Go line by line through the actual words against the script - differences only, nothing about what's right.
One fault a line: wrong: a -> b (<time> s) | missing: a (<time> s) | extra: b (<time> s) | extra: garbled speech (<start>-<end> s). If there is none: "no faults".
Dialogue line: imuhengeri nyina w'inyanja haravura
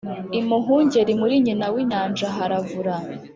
extra: muri (1.2 s)